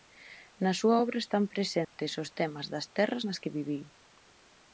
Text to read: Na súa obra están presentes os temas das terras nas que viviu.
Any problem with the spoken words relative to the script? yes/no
no